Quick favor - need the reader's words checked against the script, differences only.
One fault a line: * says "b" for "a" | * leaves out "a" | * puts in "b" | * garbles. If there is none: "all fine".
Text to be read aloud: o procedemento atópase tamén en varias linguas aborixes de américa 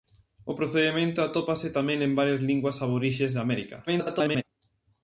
* garbles